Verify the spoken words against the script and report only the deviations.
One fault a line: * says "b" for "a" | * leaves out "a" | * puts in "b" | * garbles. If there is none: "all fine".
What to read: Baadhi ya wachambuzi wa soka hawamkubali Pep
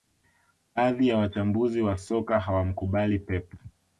all fine